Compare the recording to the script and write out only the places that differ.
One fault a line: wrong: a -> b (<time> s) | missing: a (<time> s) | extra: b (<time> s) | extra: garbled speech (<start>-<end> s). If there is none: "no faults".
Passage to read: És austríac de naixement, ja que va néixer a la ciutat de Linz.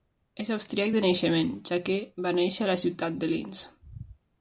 no faults